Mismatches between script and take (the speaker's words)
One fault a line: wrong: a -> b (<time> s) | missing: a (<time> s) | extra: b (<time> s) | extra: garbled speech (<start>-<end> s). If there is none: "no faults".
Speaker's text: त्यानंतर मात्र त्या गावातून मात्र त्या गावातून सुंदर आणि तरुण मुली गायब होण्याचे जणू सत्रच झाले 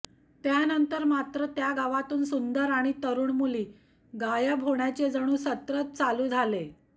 missing: मात्र त्या गावातून (2.2 s)
extra: चालू (6.0 s)